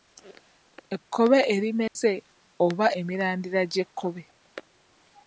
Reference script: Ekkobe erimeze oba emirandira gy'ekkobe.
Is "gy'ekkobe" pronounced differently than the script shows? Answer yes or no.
no